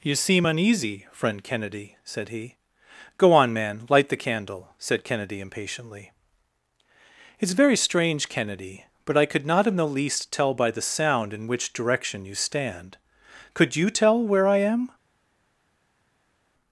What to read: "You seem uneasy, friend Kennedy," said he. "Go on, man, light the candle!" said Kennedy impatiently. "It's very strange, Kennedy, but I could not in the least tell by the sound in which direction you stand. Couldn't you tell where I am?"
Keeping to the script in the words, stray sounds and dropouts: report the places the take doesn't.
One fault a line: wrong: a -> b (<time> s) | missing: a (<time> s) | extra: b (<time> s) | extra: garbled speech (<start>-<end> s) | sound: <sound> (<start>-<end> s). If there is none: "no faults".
wrong: Couldn't -> Could (13.5 s)